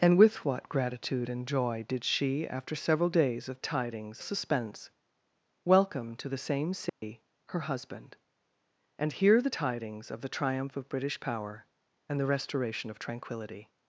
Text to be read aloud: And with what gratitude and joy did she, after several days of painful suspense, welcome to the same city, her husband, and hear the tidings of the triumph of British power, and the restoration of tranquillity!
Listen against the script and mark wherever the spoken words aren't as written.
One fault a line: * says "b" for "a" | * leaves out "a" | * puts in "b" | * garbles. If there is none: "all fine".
* says "tidings" for "painful"